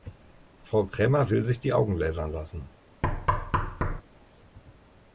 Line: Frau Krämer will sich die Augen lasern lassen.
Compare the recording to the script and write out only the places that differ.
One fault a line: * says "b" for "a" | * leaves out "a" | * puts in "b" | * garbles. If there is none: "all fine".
all fine